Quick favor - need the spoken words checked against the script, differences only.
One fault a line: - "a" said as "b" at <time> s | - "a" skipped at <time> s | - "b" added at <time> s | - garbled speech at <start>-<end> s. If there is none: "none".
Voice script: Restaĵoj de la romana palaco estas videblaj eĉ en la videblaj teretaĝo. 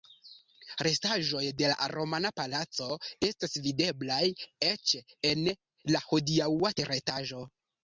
- "videblaj" said as "hodiaŭa" at 6.1 s